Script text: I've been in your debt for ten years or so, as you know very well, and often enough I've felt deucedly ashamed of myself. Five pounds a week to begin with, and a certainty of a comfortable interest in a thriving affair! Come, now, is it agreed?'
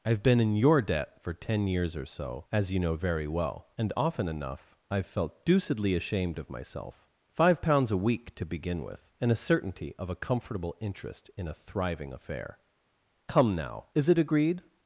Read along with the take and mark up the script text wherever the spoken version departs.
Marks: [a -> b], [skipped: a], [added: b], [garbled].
I've been in your debt for ten years or so, as you know very well, and often enough I've felt deucedly ashamed of myself. Five pounds a week to begin with, and a certainty of a comfortable interest in a thriving affair! Come, now, is it agreed?'